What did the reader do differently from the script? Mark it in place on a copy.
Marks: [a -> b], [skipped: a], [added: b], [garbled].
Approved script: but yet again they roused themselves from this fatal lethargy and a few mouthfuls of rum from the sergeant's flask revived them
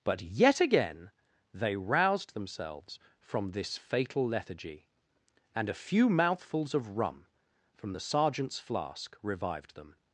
but yet again they roused themselves from this fatal lethargy and a few mouthfuls of rum from the sergeant's flask revived them